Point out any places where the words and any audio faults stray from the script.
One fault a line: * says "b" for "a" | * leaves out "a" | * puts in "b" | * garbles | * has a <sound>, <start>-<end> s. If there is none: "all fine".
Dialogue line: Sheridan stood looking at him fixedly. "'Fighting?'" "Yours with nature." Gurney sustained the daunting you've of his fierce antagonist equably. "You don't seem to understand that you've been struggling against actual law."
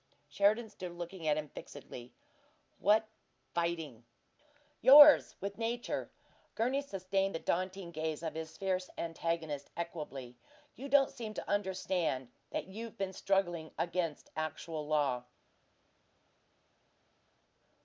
* puts in "What"
* says "gaze" for "you've"